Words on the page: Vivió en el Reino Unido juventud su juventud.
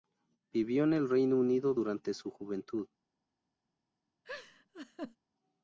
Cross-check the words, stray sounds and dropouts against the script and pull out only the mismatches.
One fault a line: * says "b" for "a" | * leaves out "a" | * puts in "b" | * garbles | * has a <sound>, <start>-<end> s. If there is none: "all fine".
* says "durante" for "juventud"
* has a laugh, 4.2-5.2 s